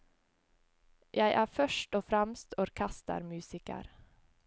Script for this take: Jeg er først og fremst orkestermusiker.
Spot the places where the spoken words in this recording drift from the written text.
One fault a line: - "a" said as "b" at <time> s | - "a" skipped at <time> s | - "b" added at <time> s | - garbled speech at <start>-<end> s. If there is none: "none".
none